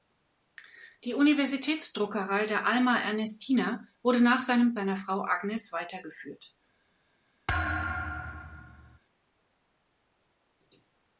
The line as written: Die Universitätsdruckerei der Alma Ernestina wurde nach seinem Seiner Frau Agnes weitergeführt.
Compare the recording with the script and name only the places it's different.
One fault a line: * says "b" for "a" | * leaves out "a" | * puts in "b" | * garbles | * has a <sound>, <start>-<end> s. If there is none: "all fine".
* has a thud, 7.5-9.0 s